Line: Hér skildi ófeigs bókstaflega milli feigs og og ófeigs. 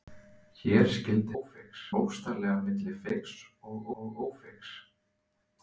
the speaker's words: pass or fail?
pass